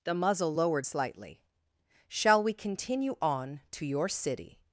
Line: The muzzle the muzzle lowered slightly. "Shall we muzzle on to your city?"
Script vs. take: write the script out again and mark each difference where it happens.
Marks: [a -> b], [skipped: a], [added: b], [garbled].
The muzzle [skipped: the muzzle] lowered slightly. "Shall we [muzzle -> continue] on to your city?"